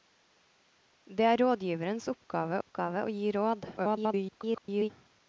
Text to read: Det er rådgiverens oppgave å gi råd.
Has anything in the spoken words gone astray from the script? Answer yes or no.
yes